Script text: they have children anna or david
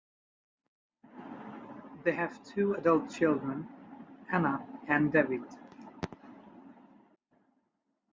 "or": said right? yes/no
no